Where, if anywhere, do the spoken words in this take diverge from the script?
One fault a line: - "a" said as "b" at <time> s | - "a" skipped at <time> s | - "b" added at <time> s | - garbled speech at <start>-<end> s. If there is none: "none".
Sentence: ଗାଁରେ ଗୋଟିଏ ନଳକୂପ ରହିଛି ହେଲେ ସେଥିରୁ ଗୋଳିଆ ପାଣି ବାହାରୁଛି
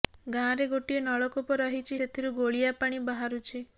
- "ହେଲେ" skipped at 2.0 s